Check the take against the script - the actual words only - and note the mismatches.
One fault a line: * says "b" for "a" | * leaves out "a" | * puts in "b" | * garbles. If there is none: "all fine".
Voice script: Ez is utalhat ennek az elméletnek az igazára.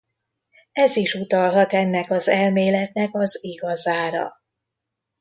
all fine